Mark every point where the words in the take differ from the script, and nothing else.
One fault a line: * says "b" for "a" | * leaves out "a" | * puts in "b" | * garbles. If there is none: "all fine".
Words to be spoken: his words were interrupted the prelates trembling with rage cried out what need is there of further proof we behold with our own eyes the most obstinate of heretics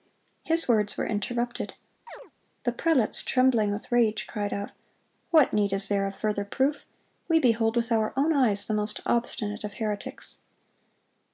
all fine